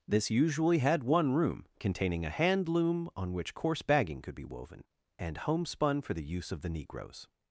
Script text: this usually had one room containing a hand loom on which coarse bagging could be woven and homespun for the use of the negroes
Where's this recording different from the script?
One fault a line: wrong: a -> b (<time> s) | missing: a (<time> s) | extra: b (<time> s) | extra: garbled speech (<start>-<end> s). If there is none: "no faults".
no faults